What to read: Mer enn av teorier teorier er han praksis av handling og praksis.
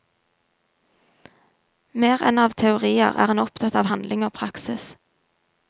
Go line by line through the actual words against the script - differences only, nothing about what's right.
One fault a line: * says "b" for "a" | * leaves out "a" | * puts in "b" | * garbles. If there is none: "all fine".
* leaves out "teorier"
* says "opptatt" for "praksis"